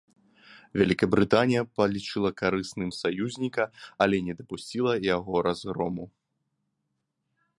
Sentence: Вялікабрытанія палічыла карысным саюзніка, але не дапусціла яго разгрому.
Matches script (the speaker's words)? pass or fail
pass